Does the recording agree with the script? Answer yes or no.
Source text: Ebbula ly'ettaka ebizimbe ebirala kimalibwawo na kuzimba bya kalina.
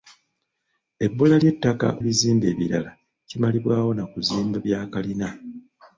yes